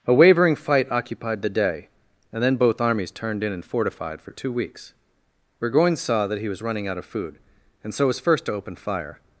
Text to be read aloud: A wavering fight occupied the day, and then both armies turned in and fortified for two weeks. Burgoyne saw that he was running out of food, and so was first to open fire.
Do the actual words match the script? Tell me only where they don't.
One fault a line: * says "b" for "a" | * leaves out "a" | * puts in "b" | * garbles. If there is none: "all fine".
all fine